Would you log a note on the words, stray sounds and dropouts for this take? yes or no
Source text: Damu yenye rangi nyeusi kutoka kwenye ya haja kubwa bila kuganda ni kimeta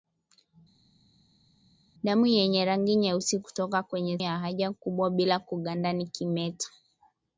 no